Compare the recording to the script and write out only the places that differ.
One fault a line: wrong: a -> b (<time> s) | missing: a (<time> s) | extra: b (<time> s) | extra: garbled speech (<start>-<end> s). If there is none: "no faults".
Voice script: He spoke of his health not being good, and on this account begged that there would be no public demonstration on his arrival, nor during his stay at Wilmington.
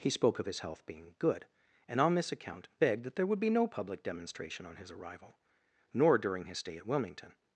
missing: not (0.8 s)